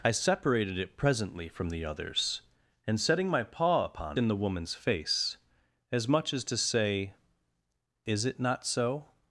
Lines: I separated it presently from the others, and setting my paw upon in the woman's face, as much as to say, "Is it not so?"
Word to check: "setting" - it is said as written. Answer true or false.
true